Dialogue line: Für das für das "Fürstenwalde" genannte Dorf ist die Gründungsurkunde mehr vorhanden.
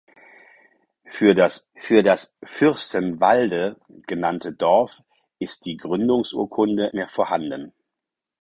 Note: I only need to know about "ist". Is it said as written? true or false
true